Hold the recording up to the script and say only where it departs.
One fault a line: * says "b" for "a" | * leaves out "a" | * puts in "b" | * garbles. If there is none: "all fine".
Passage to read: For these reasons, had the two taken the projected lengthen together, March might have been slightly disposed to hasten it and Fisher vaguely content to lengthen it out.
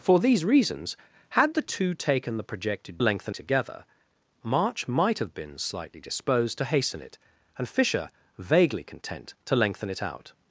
all fine